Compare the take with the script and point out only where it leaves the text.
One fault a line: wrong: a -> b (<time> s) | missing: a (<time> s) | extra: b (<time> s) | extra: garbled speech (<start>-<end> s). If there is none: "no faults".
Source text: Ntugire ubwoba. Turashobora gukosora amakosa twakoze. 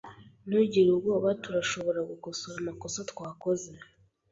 no faults